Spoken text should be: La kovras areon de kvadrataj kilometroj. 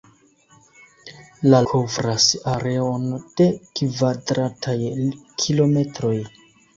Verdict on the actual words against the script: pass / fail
pass